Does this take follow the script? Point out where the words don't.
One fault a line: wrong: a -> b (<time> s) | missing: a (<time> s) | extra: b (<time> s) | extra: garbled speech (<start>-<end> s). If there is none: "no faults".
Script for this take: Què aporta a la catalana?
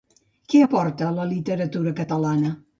extra: literatura (1.3 s)